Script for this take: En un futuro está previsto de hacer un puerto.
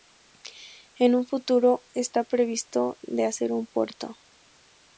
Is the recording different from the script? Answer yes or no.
no